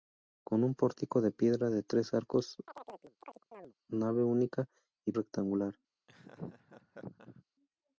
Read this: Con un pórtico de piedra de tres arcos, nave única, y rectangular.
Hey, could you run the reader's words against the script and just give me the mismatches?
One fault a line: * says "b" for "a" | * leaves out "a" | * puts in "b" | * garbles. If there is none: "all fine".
all fine